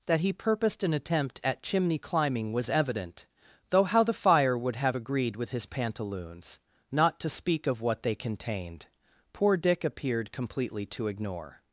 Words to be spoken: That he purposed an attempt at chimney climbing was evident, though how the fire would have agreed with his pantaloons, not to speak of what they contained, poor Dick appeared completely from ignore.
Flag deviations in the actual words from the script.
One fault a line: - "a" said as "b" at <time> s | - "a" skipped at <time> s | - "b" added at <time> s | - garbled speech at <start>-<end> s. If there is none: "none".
- "from" said as "to" at 10.9 s